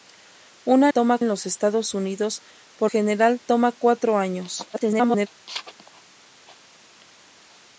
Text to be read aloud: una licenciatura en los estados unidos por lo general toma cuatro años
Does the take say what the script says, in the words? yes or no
no